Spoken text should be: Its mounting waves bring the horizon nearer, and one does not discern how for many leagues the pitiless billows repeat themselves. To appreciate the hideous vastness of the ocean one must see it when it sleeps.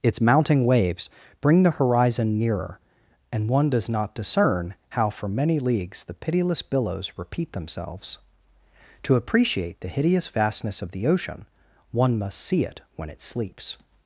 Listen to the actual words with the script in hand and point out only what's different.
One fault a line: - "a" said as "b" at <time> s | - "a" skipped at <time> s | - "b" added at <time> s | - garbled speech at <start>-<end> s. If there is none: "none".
none